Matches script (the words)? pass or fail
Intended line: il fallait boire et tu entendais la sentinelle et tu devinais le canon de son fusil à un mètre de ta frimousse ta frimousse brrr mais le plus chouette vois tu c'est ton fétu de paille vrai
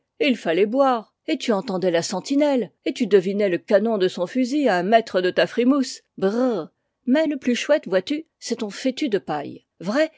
fail